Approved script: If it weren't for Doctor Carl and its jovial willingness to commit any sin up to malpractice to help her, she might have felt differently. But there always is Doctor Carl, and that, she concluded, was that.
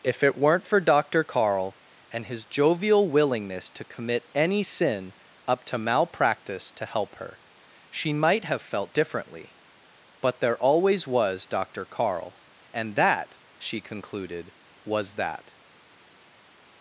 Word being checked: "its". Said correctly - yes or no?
no